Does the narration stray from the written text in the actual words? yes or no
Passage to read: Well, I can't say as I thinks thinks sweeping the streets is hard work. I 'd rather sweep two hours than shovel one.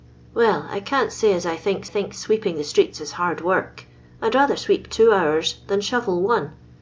no